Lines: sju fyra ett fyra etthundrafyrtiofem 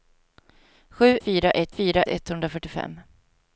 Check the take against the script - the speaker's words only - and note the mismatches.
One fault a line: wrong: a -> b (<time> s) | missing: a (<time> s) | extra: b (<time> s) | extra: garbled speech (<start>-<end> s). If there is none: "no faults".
no faults